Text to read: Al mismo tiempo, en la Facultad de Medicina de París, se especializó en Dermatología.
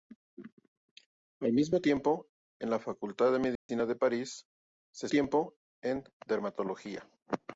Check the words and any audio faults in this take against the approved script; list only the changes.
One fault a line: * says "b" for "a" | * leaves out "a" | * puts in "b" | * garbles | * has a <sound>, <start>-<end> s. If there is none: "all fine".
* has a dropout, 3.6-3.7 s
* says "tiempo" for "especializó"